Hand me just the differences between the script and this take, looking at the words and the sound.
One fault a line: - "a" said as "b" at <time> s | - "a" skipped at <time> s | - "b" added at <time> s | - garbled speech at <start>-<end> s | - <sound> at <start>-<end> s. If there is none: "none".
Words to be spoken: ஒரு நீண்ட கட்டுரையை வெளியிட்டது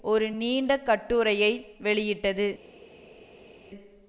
none